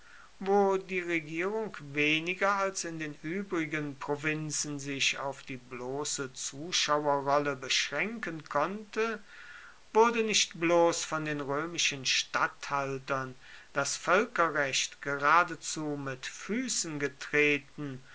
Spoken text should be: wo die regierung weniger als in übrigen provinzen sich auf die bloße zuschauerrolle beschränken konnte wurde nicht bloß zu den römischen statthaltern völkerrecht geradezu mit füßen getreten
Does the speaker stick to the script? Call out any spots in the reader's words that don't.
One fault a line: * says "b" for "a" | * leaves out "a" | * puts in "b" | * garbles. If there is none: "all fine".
* puts in "den"
* says "von" for "zu"
* puts in "das"